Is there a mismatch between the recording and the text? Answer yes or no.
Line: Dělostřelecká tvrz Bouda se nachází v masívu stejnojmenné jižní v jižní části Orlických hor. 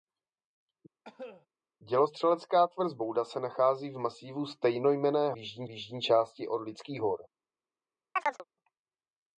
no